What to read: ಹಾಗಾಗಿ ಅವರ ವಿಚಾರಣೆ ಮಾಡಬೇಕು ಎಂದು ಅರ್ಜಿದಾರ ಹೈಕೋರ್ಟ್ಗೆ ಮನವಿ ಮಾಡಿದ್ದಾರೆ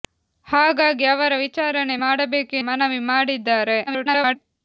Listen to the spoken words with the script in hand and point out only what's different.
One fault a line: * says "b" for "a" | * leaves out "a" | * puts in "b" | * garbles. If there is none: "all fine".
* leaves out "ಎಂದು ಅರ್ಜಿದಾರ ಹೈಕೋರ್ಟ್ಗೆ"
* garbles